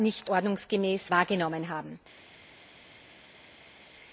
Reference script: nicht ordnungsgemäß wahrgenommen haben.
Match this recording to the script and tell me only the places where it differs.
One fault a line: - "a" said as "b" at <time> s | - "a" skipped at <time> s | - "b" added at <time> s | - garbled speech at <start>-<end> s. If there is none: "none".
none